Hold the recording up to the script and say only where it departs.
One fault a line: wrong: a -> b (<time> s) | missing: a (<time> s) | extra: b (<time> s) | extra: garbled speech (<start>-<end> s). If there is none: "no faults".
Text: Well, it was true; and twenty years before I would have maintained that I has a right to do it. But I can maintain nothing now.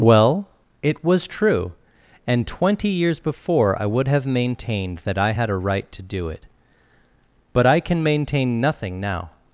wrong: has -> had (5.3 s)